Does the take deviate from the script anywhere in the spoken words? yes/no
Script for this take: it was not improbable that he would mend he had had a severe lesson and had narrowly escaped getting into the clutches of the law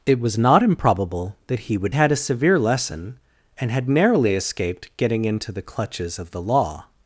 yes